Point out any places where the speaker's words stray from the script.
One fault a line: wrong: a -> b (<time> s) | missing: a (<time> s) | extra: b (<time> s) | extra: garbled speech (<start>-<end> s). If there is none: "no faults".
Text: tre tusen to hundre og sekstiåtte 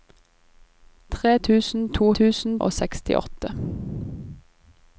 wrong: hundre -> tusen (2.2 s)